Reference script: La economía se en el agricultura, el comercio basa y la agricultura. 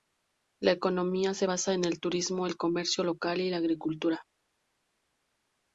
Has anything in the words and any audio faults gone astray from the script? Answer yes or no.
yes